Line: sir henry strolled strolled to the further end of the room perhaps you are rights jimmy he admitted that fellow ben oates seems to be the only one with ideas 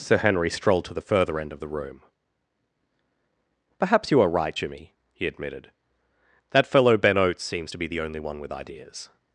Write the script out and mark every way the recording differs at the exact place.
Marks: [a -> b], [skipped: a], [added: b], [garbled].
sir henry strolled [skipped: strolled] to the further end of the room perhaps you are [rights -> right] jimmy he admitted that fellow ben oates seems to be the only one with ideas